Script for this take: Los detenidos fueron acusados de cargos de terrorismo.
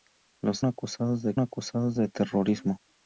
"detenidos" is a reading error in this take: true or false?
true